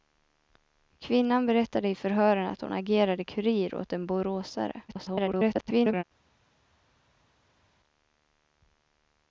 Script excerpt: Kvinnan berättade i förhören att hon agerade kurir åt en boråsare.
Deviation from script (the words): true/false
true